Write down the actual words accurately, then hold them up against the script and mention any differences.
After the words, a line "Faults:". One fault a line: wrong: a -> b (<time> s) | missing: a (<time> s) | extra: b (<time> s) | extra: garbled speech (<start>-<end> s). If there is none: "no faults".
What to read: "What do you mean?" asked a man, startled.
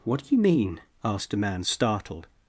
"What do you mean?" asked a man, startled.
Faults:
no faults